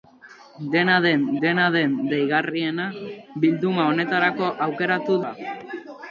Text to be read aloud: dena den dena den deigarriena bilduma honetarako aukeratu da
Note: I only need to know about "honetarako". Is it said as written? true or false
true